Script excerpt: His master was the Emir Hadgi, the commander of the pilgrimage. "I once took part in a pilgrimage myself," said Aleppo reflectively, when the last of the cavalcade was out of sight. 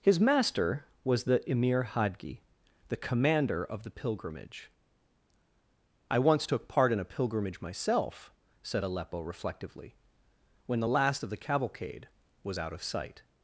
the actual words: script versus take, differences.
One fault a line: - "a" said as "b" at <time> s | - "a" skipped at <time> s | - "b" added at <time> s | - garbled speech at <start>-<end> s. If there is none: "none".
none